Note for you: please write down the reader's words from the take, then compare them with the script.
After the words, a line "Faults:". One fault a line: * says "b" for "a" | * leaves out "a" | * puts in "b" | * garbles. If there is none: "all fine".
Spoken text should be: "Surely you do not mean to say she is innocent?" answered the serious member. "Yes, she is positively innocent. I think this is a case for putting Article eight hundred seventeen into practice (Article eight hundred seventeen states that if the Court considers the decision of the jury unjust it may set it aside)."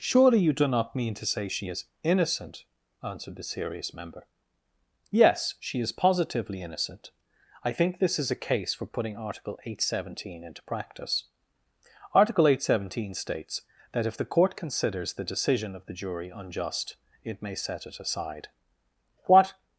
"Surely you do not mean to say she is innocent?" answered the serious member. "Yes, she is positively innocent. I think this is a case for putting Article eight hundred seventeen into practice (Article eight hundred seventeen states that if the Court considers the decision of the jury unjust it may set it aside)." "What
Faults:
* puts in "What"